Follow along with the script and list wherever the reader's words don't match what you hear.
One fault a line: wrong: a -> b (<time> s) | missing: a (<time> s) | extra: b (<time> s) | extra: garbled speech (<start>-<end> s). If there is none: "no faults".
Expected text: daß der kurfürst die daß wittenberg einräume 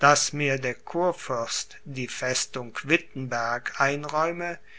extra: mir (0.3 s)
wrong: daß -> festung (2.1 s)